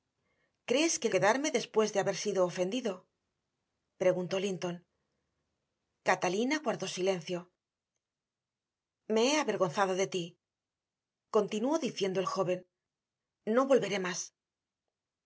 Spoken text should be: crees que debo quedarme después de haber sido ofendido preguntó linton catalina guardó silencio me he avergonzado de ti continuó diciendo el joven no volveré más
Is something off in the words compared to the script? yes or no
yes